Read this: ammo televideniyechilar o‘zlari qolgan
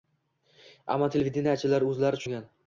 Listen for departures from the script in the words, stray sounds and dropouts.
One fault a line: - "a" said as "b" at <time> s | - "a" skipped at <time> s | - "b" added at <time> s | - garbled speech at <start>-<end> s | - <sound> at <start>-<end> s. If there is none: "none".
none